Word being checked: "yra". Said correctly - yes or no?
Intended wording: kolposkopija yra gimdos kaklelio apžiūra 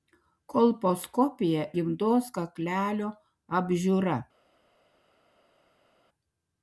no